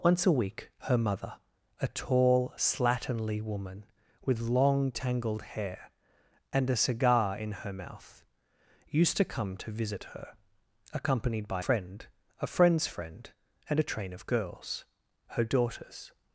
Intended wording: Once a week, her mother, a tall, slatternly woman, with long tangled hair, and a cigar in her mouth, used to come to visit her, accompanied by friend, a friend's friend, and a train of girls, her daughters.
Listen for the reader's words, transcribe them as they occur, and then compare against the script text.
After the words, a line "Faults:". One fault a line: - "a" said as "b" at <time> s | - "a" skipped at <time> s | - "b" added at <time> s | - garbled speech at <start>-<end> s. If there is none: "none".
Once a week, her mother, a tall, slatternly woman, with long tangled hair, and a cigar in her mouth, used to come to visit her, accompanied by friend, a friend's friend, and a train of girls, her daughters.
Faults:
none